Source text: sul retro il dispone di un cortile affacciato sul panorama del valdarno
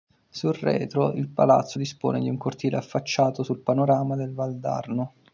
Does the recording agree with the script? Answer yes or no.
no